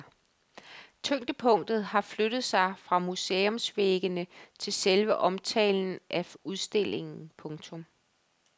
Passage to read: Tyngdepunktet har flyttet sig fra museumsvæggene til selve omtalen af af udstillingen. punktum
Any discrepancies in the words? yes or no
yes